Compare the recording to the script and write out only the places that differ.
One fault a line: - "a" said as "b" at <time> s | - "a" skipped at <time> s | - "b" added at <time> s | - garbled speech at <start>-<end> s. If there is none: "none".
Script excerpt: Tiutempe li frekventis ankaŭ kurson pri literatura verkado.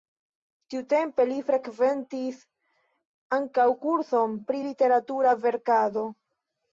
none